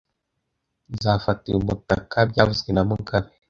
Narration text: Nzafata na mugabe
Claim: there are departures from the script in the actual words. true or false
true